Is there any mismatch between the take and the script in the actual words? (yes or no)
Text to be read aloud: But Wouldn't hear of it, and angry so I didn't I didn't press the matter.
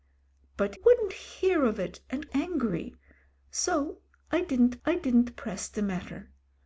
no